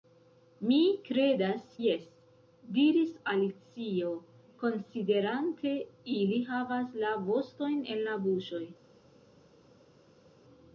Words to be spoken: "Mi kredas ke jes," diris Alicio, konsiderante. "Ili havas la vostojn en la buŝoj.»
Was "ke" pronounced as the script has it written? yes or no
no